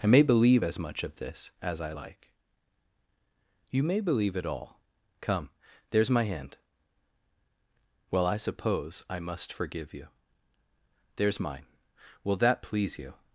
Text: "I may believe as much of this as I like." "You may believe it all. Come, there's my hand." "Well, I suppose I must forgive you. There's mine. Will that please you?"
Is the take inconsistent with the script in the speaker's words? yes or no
no